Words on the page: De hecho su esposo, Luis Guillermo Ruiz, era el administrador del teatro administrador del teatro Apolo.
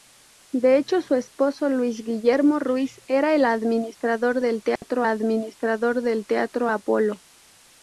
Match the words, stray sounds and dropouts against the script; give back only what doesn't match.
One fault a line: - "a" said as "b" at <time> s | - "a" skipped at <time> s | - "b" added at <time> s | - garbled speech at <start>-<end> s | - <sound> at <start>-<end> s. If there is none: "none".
- dropout at 4.8-4.8 s